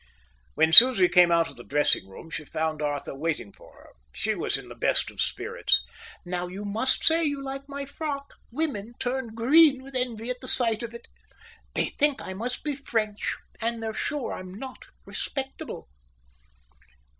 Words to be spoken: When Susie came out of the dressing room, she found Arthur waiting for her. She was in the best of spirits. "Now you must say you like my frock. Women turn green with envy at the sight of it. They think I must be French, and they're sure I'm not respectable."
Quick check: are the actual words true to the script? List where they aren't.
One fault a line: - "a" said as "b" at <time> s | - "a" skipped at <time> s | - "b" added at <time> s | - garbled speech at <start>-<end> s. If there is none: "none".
none